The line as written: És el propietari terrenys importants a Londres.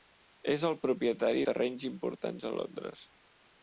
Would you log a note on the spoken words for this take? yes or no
no